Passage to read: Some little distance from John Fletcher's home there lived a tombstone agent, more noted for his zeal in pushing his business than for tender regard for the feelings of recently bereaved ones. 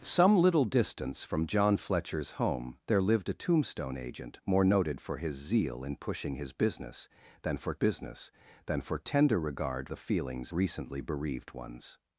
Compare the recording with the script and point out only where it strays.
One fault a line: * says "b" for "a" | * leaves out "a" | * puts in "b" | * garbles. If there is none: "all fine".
* puts in "business than for"
* leaves out "for"
* leaves out "of"